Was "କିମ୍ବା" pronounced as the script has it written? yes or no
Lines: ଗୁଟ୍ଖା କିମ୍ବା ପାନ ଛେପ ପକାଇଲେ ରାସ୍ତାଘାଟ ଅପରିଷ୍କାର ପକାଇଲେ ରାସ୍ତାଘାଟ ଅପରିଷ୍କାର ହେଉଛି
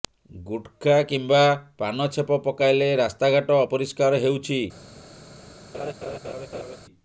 yes